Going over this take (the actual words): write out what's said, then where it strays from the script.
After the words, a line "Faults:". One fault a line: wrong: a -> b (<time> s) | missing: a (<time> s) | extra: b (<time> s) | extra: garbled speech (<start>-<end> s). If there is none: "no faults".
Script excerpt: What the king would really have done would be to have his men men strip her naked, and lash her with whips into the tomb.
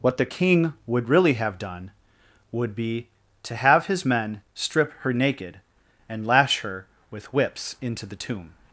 What the king would really have done would be to have his men strip her naked, and lash her with whips into the tomb.
Faults:
missing: men (4.4 s)